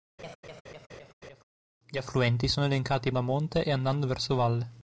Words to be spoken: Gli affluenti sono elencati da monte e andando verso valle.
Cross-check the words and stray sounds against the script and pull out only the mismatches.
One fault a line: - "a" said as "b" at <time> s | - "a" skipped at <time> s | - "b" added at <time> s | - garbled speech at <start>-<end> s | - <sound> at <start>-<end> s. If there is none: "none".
- laugh at 0.2-1.4 s